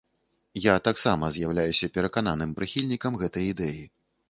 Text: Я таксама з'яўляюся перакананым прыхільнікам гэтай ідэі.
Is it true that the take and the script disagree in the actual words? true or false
false